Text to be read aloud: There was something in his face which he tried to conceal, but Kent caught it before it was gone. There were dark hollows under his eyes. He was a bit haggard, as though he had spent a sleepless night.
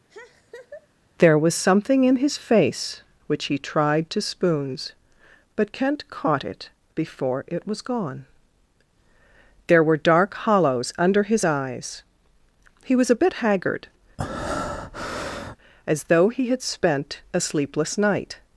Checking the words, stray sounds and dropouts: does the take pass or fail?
fail